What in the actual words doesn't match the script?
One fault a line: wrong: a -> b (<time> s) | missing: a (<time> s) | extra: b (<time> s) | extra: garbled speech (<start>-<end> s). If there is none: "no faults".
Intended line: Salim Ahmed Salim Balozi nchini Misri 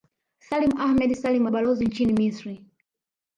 no faults